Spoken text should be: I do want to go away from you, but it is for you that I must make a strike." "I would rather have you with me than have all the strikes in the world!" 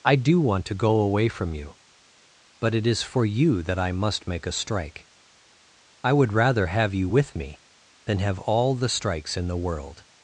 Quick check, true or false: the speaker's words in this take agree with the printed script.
true